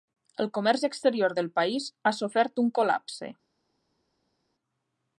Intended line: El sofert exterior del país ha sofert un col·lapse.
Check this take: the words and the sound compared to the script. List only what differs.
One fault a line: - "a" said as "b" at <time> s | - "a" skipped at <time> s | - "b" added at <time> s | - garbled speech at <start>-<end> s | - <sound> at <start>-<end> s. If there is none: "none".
- "sofert" said as "comerç" at 0.6 s